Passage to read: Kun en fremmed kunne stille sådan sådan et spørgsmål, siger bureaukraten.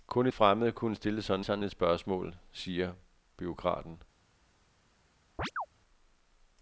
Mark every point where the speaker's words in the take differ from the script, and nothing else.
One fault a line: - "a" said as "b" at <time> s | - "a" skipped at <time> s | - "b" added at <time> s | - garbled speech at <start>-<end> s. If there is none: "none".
none